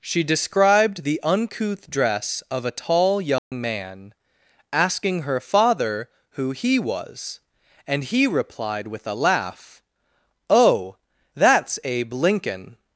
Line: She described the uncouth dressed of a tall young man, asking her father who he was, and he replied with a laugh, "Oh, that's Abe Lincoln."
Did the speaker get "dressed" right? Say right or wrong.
wrong